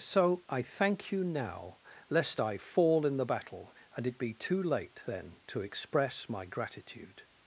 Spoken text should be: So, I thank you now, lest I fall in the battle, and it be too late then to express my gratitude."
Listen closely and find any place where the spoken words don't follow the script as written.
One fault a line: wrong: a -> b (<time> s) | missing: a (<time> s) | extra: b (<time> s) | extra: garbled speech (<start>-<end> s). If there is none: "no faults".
no faults